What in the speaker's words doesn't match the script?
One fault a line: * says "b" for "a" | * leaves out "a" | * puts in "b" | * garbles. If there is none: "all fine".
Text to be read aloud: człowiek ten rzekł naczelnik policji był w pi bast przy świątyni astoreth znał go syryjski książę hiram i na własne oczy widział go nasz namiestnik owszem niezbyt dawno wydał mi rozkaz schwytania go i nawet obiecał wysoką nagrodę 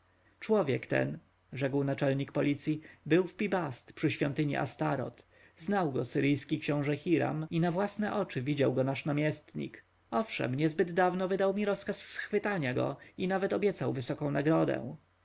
all fine